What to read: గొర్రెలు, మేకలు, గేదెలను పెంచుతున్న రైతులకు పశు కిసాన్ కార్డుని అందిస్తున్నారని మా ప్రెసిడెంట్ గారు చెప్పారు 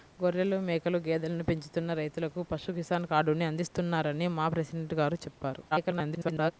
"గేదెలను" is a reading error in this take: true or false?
false